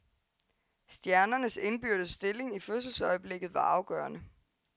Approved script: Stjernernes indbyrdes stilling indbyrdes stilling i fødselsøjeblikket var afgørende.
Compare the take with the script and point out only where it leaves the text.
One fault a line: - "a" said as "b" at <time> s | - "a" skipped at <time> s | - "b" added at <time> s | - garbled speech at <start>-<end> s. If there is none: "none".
- "indbyrdes stilling" skipped at 2.6 s